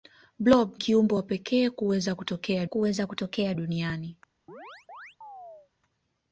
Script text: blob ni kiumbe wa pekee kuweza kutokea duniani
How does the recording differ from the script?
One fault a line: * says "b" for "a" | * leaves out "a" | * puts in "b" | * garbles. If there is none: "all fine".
* leaves out "ni"
* puts in "kuweza kutokea"